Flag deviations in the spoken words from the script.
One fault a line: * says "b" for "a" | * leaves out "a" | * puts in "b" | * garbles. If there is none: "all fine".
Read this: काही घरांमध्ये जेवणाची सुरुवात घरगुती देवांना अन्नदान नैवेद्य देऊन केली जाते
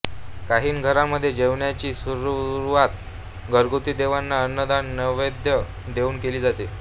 all fine